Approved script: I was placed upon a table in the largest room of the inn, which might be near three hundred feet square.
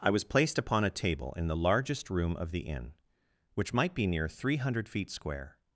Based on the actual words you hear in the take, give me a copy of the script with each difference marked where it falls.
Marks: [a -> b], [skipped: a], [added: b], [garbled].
I was placed upon a table in the largest room of the inn, which might be near three hundred feet square.